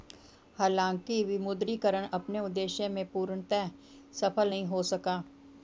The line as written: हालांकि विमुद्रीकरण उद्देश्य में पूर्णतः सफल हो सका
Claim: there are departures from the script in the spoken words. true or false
true